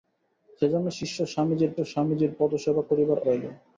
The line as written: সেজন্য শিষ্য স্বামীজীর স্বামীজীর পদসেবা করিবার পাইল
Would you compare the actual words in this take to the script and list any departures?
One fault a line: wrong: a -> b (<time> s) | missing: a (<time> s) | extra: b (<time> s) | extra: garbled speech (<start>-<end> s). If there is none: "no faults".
no faults